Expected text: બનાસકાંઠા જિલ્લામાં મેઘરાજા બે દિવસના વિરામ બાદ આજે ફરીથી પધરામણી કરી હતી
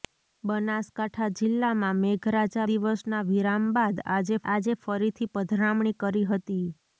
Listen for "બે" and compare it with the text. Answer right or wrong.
wrong